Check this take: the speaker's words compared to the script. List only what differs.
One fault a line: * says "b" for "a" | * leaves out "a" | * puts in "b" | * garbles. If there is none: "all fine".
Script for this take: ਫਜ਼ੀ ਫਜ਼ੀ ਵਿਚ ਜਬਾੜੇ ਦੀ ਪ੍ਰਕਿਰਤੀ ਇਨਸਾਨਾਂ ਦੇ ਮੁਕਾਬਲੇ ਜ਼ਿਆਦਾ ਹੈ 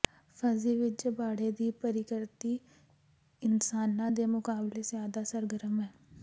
* leaves out "ਫਜ਼ੀ"
* puts in "ਸਰਗਰਮ"